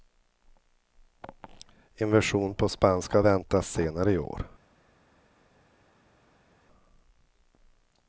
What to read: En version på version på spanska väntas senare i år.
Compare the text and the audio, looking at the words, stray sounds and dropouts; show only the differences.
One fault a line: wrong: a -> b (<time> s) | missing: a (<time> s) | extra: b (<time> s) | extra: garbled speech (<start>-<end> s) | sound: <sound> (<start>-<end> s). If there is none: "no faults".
missing: version på (2.7 s)